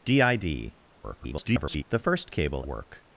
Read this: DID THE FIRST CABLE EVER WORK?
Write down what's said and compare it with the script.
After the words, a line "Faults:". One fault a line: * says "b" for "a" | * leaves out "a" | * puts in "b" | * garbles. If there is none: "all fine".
DID [garbled] THE FIRST CABLE WORK?
Faults:
* garbles
* leaves out "EVER"